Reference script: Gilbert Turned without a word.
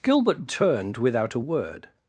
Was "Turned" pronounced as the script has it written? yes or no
yes